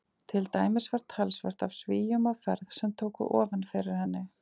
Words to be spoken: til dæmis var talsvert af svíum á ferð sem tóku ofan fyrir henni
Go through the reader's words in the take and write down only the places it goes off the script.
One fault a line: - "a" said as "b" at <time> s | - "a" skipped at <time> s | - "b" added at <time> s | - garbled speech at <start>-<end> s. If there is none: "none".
none